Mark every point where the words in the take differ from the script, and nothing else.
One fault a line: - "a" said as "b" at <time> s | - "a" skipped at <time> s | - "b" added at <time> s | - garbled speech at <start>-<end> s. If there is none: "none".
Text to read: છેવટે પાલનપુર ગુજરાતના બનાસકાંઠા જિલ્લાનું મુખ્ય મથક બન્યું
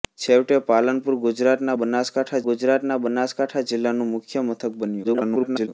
- "ગુજરાતના બનાસકાંઠા" added at 2.4 s
- garbled speech at 5.0-5.7 s